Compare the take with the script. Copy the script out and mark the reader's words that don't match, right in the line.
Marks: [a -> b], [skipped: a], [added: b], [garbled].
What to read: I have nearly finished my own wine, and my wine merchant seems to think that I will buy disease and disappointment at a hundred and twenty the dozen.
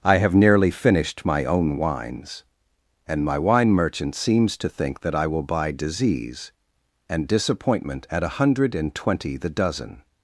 I have nearly finished my own [wine, -> wines] and my wine merchant seems to think that I will buy disease and disappointment at a hundred and twenty the dozen.